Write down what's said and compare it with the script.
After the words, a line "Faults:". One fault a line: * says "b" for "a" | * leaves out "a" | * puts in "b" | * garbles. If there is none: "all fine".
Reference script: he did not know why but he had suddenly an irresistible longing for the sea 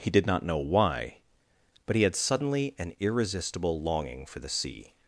he did not know why but he had suddenly an irresistible longing for the sea
Faults:
all fine